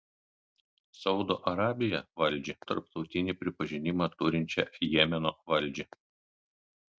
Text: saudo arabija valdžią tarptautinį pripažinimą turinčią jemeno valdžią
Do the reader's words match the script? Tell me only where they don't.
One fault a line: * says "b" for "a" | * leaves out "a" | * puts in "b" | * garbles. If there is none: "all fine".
all fine